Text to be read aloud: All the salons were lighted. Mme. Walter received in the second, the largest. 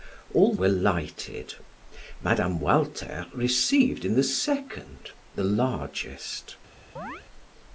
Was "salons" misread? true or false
true